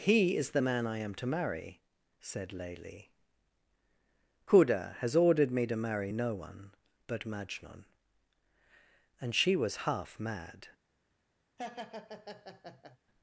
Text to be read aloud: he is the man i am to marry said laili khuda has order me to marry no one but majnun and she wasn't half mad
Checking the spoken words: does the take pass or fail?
fail